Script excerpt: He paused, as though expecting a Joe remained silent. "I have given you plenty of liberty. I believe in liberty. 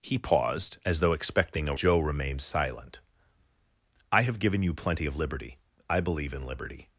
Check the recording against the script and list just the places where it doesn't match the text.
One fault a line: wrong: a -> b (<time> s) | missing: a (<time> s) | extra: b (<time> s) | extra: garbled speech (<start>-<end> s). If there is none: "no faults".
no faults